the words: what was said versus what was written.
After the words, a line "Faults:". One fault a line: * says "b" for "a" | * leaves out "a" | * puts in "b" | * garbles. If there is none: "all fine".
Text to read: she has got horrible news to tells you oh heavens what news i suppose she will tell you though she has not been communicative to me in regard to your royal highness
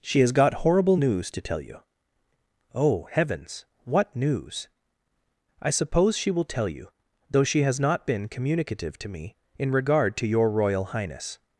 she has got horrible news to tell you oh heavens what news i suppose she will tell you though she has not been communicative to me in regard to your royal highness
Faults:
* says "tell" for "tells"